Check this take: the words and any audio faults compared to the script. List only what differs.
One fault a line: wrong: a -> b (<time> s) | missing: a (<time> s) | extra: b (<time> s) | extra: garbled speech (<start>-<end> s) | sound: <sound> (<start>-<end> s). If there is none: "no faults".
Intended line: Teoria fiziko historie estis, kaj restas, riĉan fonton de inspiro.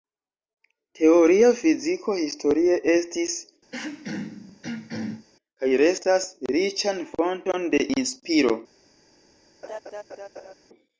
sound: throat clearing (3.7-5.3 s)
sound: laugh (9.6-10.5 s)